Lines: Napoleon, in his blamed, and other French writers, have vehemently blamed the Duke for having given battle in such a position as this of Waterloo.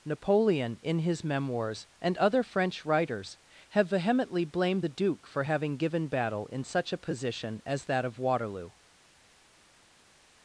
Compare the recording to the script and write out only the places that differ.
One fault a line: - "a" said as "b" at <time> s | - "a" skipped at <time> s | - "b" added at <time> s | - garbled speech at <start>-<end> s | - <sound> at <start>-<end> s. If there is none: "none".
- "blamed" said as "memoirs" at 1.2 s
- "this" said as "that" at 7.8 s